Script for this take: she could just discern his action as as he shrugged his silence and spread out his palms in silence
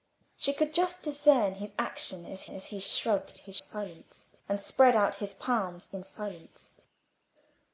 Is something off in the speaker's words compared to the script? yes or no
no